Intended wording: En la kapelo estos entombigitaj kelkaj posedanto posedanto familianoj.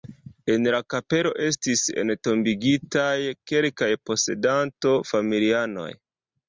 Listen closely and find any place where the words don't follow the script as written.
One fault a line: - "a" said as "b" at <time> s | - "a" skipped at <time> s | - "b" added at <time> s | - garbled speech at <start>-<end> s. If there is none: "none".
- "estos" said as "estis" at 1.5 s
- "posedanto" skipped at 5.0 s